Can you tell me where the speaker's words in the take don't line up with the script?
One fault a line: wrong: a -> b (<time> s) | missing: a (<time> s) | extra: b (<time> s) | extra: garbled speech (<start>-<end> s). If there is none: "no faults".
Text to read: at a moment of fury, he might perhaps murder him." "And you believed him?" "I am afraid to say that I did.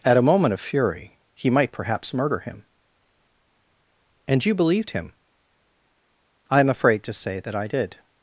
no faults